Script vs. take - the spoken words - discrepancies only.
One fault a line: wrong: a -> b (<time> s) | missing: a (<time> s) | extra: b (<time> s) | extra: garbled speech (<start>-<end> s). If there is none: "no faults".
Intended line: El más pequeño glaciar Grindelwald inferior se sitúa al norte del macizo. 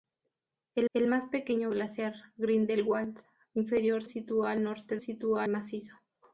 extra: el (0.9 s)
missing: se (4.0 s)
wrong: del -> sitúa (5.0 s)